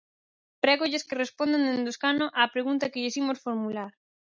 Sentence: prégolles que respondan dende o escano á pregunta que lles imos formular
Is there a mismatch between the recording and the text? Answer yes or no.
no